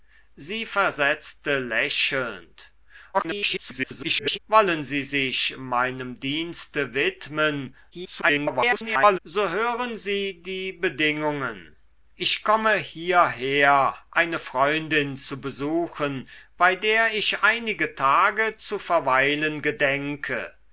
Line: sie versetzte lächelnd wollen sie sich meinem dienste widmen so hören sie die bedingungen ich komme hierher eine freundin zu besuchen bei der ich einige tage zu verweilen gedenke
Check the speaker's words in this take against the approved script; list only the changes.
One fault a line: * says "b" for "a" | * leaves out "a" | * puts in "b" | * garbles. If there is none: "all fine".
* garbles
* garbles